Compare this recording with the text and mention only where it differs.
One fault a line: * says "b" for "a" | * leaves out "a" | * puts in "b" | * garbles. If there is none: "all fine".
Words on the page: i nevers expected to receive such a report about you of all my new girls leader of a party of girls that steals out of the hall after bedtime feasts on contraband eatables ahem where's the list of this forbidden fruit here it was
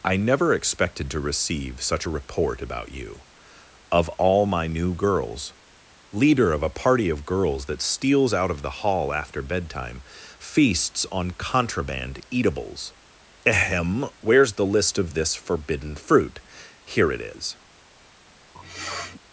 * says "never" for "nevers"
* says "is" for "was"